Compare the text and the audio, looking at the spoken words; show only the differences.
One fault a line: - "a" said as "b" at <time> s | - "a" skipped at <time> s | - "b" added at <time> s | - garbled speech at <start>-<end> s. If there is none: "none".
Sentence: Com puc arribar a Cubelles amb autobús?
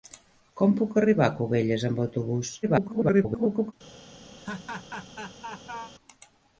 - garbled speech at 2.6-3.7 s